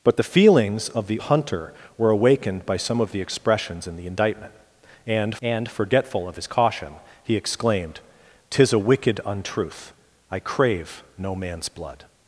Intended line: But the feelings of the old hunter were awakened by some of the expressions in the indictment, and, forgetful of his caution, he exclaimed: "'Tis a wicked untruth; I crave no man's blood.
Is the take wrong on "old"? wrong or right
wrong